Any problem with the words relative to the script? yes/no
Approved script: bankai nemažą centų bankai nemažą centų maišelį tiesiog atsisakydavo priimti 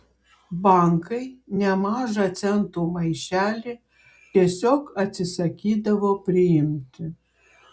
yes